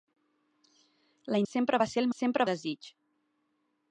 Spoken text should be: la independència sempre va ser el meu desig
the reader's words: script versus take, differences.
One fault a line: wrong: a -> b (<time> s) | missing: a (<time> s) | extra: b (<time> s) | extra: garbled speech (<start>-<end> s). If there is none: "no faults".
missing: independència (1.4 s)
wrong: meu -> sempre (2.2 s)